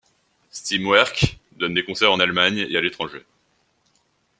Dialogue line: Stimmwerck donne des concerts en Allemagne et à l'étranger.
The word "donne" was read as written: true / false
true